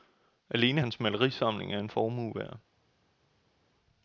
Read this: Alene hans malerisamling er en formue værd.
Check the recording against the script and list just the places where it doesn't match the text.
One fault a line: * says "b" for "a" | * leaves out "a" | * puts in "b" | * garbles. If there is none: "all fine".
all fine